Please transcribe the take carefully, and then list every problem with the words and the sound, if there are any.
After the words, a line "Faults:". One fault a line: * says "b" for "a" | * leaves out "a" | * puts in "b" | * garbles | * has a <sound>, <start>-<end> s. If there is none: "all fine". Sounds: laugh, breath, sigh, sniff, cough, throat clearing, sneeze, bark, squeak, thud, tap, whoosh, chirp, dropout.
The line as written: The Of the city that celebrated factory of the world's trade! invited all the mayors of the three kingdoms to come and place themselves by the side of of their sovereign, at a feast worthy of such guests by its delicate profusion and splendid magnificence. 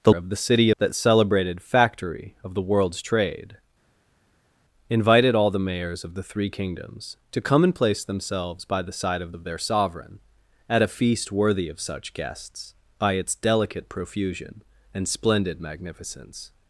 The Of the city that celebrated factory of the world's trade! invited all the mayors of the three kingdoms to come and place themselves by the side of of their sovereign, at a feast worthy of such guests by its delicate profusion and splendid magnificence.
Faults:
all fine